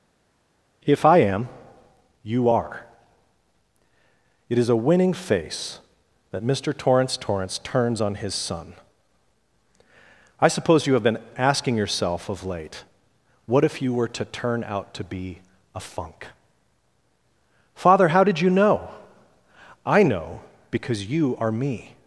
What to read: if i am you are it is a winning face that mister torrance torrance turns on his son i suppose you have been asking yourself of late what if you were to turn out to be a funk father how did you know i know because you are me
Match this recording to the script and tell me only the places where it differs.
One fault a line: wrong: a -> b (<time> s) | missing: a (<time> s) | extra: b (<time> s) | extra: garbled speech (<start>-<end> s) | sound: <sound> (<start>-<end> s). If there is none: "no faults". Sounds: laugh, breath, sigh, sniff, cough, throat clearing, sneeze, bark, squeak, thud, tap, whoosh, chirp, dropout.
no faults